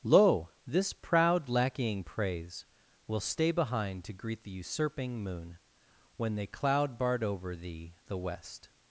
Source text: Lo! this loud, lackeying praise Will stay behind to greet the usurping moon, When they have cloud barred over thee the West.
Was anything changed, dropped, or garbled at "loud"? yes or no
yes